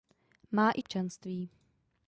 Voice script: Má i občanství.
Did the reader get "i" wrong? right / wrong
right